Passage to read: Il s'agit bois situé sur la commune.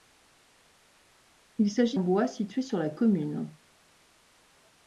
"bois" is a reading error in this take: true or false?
false